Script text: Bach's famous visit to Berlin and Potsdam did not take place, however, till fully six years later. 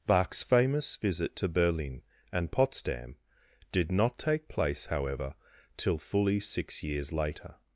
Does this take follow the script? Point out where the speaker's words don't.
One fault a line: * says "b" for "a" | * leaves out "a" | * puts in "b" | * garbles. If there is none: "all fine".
all fine